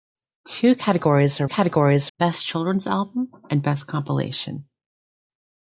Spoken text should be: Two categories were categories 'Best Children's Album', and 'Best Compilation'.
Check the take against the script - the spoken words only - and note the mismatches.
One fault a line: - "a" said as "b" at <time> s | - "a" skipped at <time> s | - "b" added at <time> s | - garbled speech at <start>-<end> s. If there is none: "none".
none